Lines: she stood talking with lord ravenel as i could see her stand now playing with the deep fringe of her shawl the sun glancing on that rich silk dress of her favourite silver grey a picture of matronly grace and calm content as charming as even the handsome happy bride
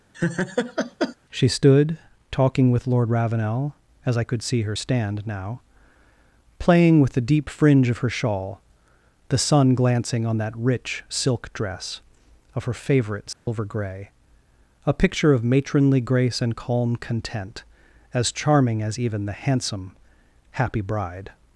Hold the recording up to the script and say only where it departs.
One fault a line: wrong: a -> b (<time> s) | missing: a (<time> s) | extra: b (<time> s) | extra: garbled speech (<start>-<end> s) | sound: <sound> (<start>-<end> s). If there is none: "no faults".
sound: laugh (0.1-1.2 s)
sound: dropout (13.3-13.5 s)